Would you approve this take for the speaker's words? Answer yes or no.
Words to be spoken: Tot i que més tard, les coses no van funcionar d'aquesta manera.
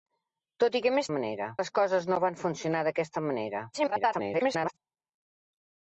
no